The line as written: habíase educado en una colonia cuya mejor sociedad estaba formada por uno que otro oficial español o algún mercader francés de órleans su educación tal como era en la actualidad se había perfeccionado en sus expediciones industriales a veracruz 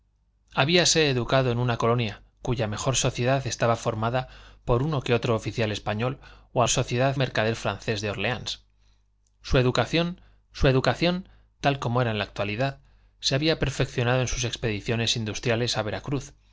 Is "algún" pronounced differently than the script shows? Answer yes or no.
yes